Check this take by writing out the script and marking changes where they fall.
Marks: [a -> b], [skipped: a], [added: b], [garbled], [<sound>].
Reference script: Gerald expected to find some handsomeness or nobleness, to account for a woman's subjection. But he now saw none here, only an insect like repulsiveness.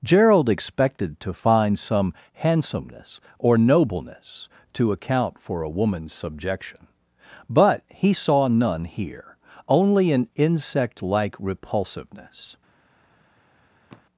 Gerald expected to find some handsomeness or nobleness, to account for a woman's subjection. But he [skipped: now] saw none here, only an insect like repulsiveness. [sigh]